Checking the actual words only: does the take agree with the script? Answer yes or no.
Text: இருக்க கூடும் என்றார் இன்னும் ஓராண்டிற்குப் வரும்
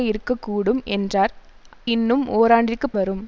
yes